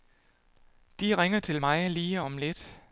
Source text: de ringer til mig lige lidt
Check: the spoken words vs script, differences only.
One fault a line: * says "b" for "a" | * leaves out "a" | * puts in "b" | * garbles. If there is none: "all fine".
* puts in "om"